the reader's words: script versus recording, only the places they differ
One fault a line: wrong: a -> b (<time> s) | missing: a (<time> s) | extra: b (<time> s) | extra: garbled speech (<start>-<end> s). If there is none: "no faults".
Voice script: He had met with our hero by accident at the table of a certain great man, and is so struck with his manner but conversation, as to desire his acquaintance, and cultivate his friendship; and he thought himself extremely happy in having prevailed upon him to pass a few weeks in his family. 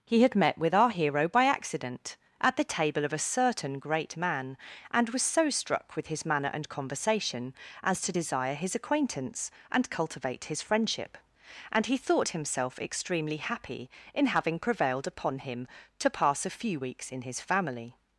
wrong: is -> was (5.1 s)
wrong: but -> and (6.5 s)